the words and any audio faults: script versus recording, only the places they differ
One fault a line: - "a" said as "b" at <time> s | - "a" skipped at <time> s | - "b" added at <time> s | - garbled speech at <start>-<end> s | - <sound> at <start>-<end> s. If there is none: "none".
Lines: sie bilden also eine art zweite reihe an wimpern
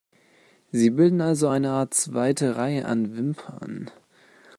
none